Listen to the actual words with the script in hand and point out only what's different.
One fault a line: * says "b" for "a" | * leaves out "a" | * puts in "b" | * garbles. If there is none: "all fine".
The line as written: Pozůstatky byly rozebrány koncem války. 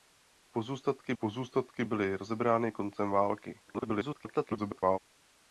* puts in "pozůstatky"
* garbles